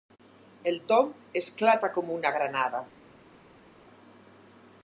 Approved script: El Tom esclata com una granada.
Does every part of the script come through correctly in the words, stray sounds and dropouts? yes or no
yes